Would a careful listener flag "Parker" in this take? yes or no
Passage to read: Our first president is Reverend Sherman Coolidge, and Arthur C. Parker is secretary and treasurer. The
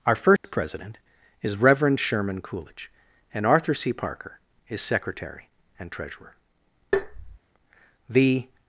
no